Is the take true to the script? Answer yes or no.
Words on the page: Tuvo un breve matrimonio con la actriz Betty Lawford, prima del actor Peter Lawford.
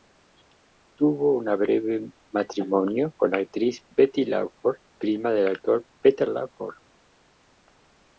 yes